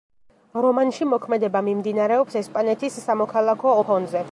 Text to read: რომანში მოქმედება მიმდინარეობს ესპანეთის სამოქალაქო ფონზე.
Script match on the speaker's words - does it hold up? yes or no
yes